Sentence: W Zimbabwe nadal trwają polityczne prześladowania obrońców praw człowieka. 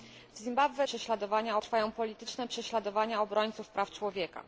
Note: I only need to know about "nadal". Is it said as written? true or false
false